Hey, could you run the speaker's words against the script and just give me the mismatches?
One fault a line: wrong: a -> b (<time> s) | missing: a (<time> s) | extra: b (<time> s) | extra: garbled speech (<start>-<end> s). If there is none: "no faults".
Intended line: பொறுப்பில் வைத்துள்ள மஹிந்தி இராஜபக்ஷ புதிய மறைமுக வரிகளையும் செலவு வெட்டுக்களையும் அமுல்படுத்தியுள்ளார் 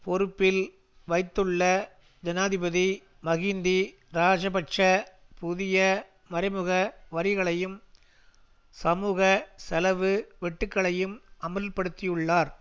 extra: ஜனாதிபதி (2.2 s)
extra: சமூக (8.8 s)